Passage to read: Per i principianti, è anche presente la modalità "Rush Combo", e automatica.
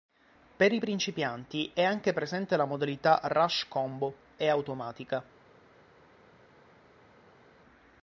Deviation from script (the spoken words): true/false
false